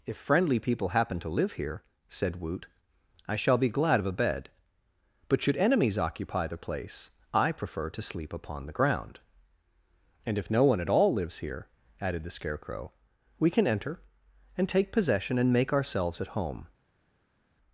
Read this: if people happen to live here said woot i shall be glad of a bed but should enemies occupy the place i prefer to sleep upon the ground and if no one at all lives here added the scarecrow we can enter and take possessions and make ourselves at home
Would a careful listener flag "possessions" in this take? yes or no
yes